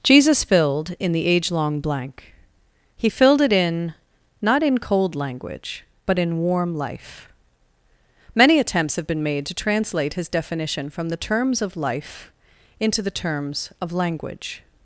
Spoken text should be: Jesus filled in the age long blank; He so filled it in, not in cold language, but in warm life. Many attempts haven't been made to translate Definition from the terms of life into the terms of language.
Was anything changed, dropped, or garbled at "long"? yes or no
no